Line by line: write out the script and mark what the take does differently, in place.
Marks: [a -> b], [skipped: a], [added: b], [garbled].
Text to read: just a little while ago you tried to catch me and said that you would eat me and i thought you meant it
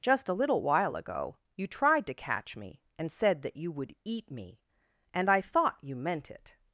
just a little while ago you tried to catch me and said that you would eat me and i thought you meant it